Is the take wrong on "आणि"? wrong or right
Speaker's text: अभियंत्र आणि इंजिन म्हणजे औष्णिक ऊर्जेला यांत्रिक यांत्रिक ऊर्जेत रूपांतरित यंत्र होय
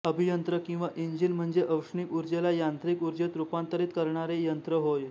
wrong